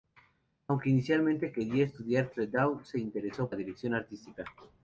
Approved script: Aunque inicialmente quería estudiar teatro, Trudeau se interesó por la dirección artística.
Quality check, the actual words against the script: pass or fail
fail